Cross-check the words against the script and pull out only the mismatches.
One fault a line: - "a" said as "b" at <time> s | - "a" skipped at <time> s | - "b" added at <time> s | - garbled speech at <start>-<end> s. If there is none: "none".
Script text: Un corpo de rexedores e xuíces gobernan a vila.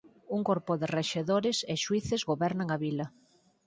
none